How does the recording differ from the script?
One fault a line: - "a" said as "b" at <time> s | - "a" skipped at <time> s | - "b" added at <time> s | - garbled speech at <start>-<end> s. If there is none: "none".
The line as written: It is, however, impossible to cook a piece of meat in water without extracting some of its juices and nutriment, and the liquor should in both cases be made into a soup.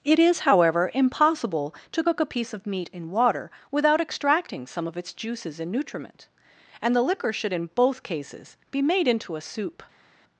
none